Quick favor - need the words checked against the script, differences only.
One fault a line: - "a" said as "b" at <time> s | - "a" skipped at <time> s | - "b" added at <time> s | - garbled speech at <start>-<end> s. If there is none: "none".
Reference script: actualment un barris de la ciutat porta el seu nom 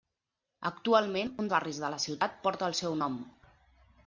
none